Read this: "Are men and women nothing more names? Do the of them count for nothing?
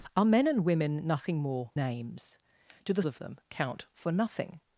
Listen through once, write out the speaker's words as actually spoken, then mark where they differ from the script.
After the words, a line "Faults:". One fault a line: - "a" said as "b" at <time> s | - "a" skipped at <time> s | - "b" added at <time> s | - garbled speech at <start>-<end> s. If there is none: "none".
"Are men and women nothing more names? Do the of them count for nothing?
Faults:
none